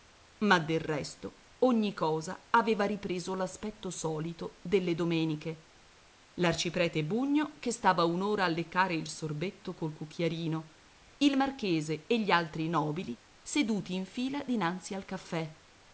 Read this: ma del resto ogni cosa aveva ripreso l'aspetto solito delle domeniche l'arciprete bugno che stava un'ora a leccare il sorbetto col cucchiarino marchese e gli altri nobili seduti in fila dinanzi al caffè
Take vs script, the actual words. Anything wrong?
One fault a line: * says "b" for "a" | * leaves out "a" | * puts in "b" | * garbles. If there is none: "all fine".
* puts in "il"